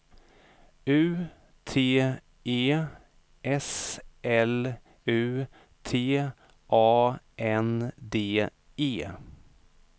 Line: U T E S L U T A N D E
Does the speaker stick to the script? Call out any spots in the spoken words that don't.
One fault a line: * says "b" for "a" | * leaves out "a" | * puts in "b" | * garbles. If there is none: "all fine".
all fine